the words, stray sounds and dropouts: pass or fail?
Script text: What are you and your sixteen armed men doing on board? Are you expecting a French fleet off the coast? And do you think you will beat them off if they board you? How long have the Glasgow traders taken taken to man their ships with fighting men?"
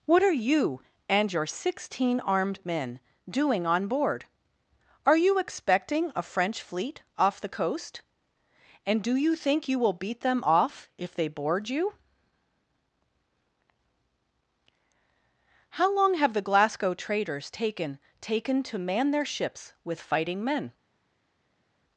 pass